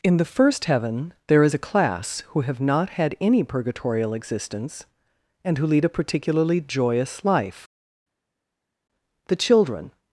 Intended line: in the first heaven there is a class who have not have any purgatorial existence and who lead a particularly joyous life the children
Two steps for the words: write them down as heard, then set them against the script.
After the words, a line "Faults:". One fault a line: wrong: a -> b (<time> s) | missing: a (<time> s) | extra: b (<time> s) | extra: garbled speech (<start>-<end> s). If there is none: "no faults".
in the first heaven there is a class who have not had any purgatorial existence and who lead a particularly joyous life the children
Faults:
wrong: have -> had (2.9 s)